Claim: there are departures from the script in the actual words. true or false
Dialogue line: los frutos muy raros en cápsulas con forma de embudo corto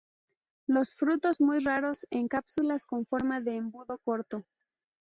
false